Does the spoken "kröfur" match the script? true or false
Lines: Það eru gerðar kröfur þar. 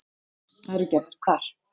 false